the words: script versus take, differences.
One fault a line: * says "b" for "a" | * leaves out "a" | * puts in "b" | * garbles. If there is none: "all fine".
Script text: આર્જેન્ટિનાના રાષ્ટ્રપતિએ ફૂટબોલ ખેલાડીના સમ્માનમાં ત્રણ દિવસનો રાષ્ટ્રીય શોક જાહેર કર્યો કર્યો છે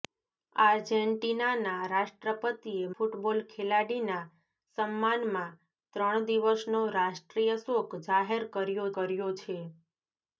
all fine